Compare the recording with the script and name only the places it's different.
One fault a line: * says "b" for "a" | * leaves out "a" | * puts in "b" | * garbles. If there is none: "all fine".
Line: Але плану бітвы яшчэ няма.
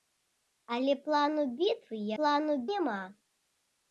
* says "плану" for "яшчэ"